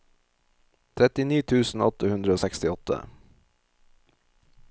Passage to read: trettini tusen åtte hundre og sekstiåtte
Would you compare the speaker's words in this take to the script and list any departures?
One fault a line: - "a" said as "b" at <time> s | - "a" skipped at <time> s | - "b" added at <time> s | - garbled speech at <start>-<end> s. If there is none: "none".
none